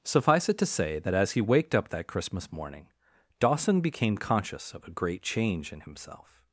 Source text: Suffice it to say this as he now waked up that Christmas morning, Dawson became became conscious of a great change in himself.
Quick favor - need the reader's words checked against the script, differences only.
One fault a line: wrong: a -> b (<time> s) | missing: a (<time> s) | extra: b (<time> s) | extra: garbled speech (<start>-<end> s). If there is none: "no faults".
wrong: this -> that (1.0 s)
missing: now (1.4 s)
missing: became (4.2 s)